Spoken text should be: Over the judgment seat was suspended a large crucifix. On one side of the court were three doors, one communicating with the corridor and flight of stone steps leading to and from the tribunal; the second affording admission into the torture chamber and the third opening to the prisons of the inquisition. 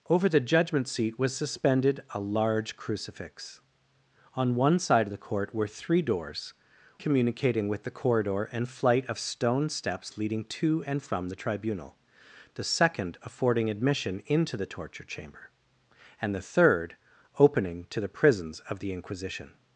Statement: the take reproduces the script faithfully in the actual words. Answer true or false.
false